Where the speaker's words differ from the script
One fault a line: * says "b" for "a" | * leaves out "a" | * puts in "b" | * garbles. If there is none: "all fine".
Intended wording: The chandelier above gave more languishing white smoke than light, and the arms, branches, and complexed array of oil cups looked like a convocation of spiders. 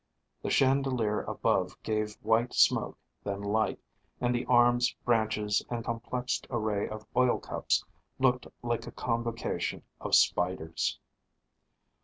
* leaves out "more languishing"